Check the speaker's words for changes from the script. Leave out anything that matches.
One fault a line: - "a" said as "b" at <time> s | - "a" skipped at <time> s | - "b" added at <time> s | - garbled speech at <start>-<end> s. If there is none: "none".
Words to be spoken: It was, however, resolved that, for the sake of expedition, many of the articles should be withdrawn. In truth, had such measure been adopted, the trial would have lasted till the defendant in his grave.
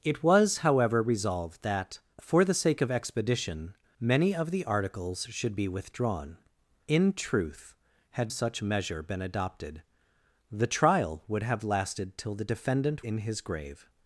none